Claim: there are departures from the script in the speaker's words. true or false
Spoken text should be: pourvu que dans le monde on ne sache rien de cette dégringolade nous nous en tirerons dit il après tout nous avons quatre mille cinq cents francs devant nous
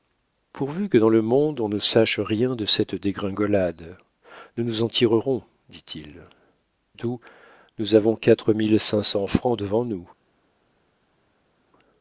true